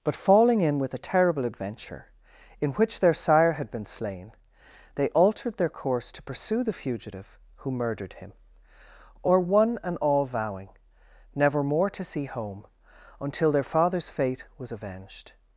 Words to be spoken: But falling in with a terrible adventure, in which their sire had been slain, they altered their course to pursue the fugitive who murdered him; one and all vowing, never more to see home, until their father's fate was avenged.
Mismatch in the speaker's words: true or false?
true